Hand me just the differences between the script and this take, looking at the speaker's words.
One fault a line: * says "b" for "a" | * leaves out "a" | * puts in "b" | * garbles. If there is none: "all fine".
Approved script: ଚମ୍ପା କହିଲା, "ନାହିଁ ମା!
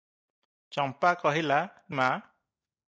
* leaves out "ନାହିଁ"